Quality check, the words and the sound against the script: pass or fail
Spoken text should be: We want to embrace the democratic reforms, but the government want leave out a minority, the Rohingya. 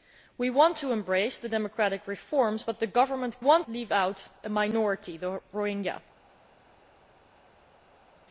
pass